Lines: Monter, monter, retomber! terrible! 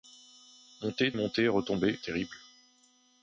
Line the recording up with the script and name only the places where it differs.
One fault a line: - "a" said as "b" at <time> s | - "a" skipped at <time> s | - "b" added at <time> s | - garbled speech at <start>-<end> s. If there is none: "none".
none